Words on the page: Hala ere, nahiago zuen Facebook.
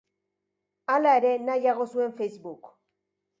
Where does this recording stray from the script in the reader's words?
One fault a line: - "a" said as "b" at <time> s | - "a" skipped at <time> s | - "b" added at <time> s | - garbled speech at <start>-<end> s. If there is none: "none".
none